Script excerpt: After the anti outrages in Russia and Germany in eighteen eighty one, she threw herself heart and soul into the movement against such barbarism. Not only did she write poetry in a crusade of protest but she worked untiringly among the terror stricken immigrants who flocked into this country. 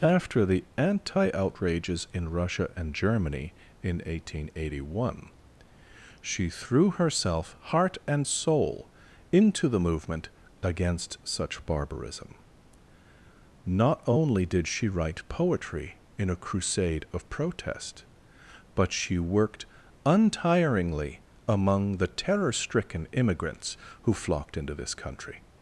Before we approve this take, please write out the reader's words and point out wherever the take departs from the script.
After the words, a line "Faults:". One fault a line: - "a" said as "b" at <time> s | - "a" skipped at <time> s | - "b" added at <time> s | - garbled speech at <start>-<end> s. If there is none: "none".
After the anti outrages in Russia and Germany in eighteen eighty one, she threw herself heart and soul into the movement against such barbarism. Not only did she write poetry in a crusade of protest but she worked untiringly among the terror stricken immigrants who flocked into this country.
Faults:
none